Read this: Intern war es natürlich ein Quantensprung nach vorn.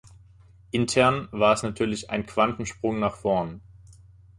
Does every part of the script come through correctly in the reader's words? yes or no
yes